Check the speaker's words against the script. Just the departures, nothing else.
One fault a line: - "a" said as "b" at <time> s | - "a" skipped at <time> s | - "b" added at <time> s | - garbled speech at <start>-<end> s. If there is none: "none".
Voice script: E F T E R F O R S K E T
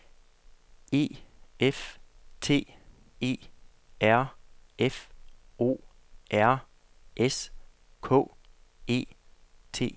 none